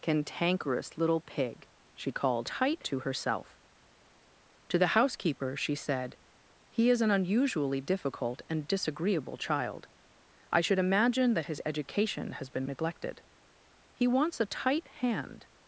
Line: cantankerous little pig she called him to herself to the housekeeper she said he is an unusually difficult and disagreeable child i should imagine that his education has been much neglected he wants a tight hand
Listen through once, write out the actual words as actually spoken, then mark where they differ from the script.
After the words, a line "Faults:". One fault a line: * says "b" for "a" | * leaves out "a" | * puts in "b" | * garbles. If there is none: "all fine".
cantankerous little pig she called tight to herself to the housekeeper she said he is an unusually difficult and disagreeable child i should imagine that his education has been neglected he wants a tight hand
Faults:
* says "tight" for "him"
* leaves out "much"